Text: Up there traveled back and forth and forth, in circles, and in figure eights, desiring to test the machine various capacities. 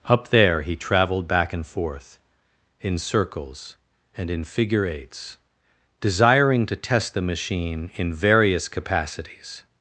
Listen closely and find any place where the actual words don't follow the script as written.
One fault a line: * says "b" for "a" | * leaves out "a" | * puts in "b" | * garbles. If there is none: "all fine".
* puts in "he"
* leaves out "and forth"
* puts in "in"